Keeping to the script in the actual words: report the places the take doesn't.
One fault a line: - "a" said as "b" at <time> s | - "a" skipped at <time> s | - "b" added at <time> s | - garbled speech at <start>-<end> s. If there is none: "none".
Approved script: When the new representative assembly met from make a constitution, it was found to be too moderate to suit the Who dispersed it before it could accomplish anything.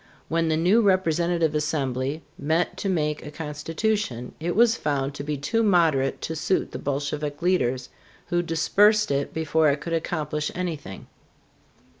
- "from" said as "to" at 2.8 s
- "Bolshevik leaders" added at 6.8 s